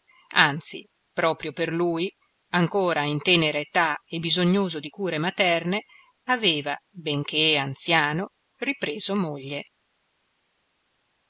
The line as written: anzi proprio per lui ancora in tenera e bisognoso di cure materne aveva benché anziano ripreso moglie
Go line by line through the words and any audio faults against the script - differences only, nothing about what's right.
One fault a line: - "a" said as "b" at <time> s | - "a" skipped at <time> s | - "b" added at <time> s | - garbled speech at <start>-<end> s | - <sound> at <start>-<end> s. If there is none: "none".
- "età" added at 3.6 s